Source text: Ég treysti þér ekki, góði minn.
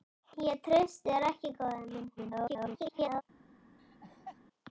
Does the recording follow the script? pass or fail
fail